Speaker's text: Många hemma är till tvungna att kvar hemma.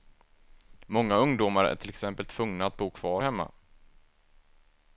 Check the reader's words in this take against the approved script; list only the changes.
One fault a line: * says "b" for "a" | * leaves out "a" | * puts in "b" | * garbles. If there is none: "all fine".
* says "ungdomar" for "hemma"
* puts in "exempel"
* puts in "bo"